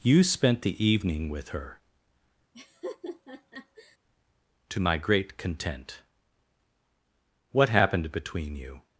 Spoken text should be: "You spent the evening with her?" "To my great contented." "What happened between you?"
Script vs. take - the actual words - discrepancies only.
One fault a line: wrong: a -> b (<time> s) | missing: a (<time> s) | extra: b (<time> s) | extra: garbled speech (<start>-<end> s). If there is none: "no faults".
wrong: contented -> content (5.4 s)